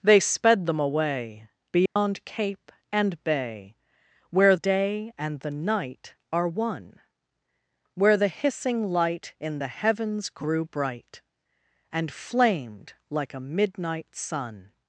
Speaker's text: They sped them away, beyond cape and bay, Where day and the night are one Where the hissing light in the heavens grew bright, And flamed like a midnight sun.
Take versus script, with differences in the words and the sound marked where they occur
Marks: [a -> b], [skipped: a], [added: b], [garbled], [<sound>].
They sped them away, beyond [dropout] cape and bay, Where day and the night are one Where the hissing light in the heavens grew bright, And flamed like a midnight sun.